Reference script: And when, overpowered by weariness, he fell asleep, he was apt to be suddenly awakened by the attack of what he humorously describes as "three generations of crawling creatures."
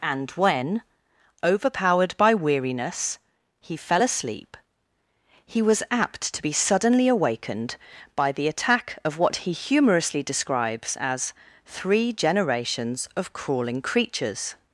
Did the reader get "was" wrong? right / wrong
right